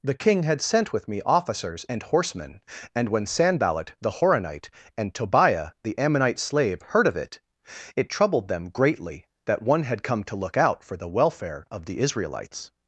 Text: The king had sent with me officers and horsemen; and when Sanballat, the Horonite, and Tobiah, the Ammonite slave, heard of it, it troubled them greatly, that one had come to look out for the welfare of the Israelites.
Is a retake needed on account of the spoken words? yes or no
no